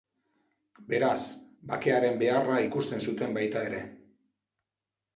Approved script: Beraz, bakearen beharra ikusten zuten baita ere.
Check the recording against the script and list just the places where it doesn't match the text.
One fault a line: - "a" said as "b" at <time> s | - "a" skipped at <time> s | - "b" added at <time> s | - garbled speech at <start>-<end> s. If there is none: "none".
none